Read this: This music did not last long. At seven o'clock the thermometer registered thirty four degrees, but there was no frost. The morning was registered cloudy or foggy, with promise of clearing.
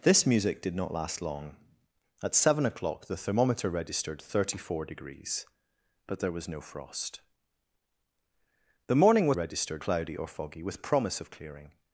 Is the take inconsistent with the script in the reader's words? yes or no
no